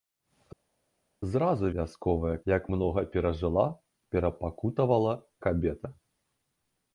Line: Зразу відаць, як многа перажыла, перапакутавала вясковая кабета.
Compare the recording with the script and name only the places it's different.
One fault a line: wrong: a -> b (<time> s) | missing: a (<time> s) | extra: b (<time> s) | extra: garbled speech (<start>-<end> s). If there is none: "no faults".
wrong: відаць -> вясковая (1.8 s)
missing: вясковая (5.1 s)